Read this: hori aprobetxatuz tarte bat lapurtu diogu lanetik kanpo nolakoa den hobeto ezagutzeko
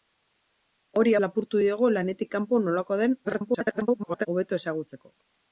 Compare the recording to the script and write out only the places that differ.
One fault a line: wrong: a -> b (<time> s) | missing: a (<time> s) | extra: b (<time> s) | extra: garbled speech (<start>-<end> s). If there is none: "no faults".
missing: aprobetxatuz tarte bat (1.1 s)
extra: garbled speech (3.2-4.3 s)